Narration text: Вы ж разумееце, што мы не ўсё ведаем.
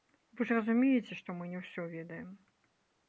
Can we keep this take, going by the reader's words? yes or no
yes